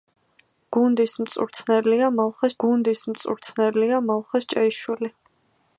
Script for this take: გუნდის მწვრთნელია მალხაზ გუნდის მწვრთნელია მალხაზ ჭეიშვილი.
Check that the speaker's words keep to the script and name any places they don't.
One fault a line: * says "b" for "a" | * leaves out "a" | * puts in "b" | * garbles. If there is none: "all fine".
all fine